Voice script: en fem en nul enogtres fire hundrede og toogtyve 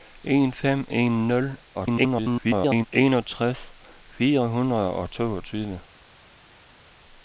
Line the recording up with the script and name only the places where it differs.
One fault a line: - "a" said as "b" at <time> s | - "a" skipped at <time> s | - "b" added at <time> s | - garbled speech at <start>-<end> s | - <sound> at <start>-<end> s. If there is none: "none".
- garbled speech at 1.7-2.9 s